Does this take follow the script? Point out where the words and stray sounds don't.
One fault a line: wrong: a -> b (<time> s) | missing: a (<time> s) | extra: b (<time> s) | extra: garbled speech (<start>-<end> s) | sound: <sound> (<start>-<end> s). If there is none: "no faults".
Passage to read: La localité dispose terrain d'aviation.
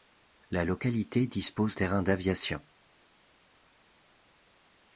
no faults